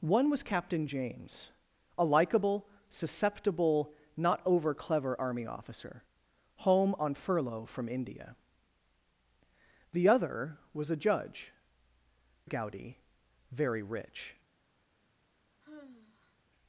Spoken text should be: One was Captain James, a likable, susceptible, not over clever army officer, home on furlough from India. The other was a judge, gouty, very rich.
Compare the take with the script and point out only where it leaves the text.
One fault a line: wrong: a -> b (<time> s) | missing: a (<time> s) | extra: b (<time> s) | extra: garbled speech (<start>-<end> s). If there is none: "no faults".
no faults